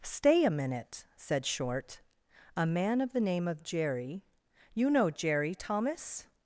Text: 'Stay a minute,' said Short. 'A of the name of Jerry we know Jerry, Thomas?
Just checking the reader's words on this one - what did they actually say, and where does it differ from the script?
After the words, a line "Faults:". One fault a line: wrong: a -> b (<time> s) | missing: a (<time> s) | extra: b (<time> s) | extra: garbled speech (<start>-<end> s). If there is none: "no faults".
'Stay a minute,' said Short. 'A man of the name of Jerry you know Jerry, Thomas?
Faults:
extra: man (2.6 s)
wrong: we -> you (4.7 s)